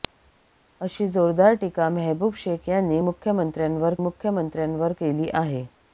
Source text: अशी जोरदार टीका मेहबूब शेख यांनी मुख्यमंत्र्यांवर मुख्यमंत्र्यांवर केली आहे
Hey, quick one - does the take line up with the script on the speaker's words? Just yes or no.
yes